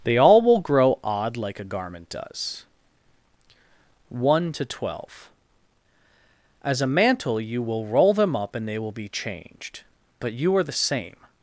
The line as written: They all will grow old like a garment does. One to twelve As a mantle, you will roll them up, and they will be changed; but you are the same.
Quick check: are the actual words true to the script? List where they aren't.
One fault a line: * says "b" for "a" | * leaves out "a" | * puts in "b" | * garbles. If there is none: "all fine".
* says "odd" for "old"